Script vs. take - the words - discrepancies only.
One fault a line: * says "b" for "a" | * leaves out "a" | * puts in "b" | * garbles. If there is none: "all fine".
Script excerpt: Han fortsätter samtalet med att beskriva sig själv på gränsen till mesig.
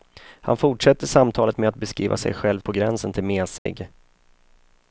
all fine